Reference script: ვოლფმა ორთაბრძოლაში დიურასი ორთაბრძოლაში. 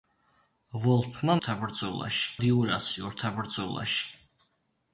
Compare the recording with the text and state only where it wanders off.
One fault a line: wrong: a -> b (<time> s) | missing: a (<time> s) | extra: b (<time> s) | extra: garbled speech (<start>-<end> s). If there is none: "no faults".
no faults